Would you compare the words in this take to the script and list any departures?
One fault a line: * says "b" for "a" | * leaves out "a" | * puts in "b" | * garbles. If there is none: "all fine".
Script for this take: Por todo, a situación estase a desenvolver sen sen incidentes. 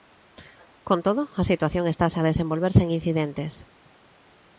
* says "Con" for "Por"
* leaves out "sen"